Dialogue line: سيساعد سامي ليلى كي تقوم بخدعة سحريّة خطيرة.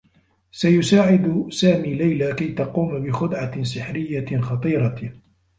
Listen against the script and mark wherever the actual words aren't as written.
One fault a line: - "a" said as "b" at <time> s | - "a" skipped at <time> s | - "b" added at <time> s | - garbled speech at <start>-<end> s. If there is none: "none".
none